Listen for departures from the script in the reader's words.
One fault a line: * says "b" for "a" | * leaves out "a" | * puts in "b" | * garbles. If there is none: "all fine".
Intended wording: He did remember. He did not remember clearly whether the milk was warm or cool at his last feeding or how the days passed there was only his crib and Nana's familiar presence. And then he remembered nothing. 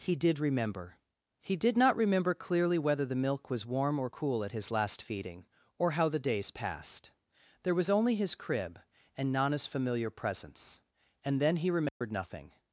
all fine